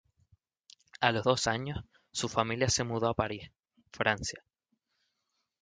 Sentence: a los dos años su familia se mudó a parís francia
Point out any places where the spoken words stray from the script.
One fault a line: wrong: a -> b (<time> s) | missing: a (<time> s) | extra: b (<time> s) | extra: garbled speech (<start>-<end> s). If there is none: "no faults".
no faults